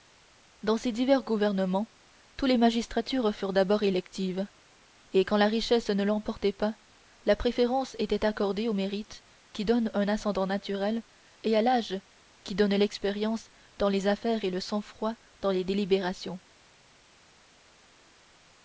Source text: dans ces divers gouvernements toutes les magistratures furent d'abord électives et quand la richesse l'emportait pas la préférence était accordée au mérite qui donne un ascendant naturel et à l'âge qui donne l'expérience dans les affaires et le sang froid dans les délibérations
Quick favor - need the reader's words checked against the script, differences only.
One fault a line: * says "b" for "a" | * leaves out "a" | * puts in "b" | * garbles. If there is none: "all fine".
* puts in "ne"